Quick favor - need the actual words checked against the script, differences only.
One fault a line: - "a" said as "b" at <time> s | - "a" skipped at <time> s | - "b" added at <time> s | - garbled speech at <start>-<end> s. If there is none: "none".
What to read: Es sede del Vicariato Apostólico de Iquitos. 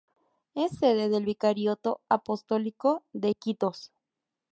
none